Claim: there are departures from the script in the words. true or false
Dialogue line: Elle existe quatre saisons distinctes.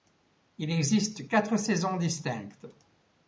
true